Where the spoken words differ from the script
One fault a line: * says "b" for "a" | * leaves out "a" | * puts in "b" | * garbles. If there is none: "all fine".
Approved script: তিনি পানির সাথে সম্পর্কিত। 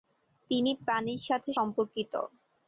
all fine